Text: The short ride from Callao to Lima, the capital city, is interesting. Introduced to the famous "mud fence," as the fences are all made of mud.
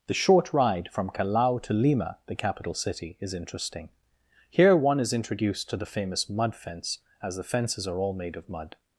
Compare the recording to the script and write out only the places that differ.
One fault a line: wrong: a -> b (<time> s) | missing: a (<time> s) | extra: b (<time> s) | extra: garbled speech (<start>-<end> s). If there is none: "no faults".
extra: Here one is (4.5 s)